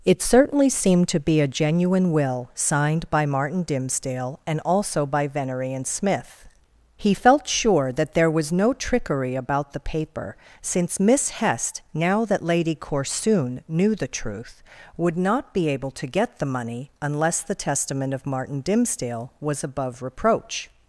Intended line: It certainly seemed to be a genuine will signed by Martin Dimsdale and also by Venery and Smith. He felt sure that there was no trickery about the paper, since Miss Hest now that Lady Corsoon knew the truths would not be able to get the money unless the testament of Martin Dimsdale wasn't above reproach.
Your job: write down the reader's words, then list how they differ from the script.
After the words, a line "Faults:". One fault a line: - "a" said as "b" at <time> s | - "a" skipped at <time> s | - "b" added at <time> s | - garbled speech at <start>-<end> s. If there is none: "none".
It certainly seemed to be a genuine will signed by Martin Dimsdale and also by Venery and Smith. He felt sure that there was no trickery about the paper, since Miss Hest now that Lady Corsoon knew the truth would not be able to get the money unless the testament of Martin Dimsdale was above reproach.
Faults:
- "truths" said as "truth" at 14.1 s
- "wasn't" said as "was" at 19.4 s